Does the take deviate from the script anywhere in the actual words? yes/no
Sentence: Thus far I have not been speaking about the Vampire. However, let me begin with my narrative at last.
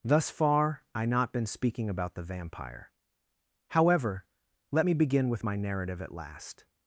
yes